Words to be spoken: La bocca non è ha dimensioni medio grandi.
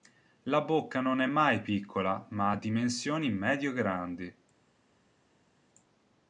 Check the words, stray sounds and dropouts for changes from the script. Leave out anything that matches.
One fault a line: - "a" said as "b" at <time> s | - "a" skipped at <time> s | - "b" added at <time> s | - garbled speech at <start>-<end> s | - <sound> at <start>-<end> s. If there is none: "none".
- "mai piccola ma" added at 1.2 s